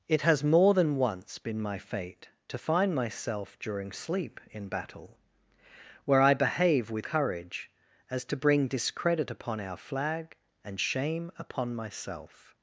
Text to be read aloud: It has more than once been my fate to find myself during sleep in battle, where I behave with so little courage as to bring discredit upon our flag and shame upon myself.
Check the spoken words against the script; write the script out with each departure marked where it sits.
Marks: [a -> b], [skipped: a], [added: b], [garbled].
It has more than once been my fate to find myself during sleep in battle, where I behave with [skipped: so little] courage as to bring discredit upon our flag and shame upon myself.